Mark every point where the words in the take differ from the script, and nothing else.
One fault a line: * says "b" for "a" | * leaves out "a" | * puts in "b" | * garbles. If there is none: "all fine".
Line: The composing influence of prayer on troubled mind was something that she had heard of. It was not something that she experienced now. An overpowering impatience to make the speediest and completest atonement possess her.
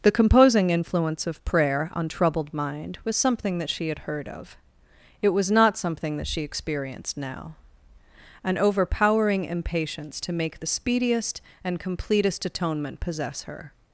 all fine